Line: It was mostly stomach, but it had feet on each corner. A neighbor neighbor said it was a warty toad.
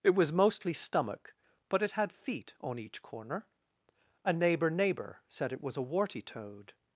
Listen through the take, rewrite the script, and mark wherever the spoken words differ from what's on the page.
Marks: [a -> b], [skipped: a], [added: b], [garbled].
It was mostly stomach, but it had feet on each corner. A neighbor neighbor said it was a warty toad.